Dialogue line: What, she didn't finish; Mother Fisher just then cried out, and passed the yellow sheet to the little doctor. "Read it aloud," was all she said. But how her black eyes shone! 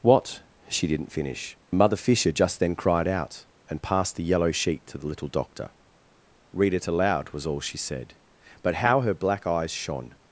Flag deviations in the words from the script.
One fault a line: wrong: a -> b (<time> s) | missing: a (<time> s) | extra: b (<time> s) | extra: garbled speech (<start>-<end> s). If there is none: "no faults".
no faults